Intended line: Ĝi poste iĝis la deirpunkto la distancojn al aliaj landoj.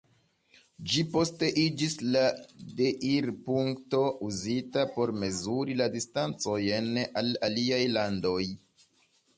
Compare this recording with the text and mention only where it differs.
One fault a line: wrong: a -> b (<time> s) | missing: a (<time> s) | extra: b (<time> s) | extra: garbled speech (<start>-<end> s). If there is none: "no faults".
extra: uzita por mezuri (4.3 s)